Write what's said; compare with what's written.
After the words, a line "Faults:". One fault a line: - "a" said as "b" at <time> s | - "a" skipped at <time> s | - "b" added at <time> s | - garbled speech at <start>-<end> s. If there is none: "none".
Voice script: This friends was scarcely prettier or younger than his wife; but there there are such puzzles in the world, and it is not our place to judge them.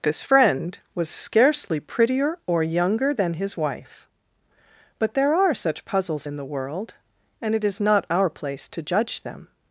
This friend was scarcely prettier or younger than his wife; but there are such puzzles in the world, and it is not our place to judge them.
Faults:
- "friends" said as "friend" at 0.2 s
- "there" skipped at 5.3 s